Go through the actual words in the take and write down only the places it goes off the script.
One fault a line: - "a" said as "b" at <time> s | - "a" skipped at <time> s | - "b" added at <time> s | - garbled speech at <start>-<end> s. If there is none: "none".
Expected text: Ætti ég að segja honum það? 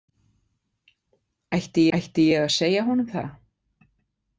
- "ætti" added at 2.0 s